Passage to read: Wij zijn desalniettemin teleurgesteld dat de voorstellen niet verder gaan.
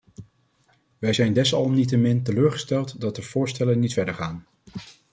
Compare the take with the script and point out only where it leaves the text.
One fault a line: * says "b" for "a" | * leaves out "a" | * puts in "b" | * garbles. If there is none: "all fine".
all fine